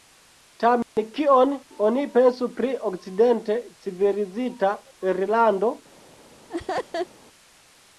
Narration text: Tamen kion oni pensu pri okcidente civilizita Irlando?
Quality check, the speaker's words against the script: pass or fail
pass